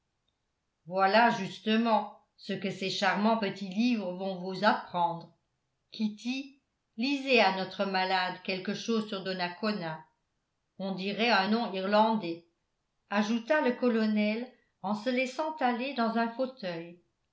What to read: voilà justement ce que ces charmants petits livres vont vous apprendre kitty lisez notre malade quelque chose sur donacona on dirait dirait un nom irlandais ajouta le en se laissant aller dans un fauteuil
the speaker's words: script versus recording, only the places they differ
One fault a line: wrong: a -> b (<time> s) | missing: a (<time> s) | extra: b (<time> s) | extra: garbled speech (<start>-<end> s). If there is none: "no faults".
extra: à (7.4 s)
missing: dirait (11.3 s)
extra: colonel (13.7 s)